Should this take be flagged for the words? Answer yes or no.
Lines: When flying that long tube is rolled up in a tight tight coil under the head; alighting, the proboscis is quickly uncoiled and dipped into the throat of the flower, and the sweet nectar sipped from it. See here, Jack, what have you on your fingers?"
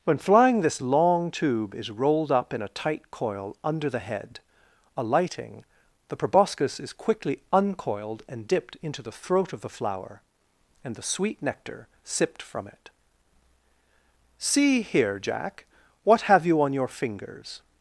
yes